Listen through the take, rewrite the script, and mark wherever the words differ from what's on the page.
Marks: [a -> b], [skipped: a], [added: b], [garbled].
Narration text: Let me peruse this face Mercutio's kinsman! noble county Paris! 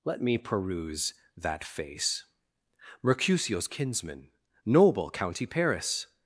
Let me peruse [this -> that] face Mercutio's kinsman! noble county Paris!